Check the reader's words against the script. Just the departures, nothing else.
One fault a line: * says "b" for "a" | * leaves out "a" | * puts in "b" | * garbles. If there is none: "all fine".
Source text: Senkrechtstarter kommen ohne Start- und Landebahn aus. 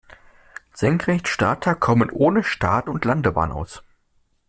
all fine